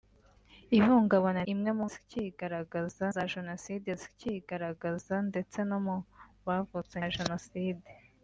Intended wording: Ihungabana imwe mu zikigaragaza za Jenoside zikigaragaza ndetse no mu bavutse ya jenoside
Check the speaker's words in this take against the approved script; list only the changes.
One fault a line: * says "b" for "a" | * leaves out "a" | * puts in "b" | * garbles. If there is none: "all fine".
all fine